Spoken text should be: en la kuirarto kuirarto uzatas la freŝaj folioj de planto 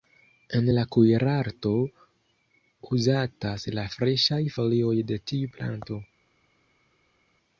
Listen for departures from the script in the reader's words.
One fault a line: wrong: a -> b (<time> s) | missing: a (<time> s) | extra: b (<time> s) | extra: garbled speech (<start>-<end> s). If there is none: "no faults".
missing: kuirarto (1.7 s)
extra: tiu (5.3 s)